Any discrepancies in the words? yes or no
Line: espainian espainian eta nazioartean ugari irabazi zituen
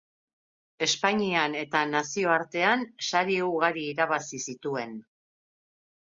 yes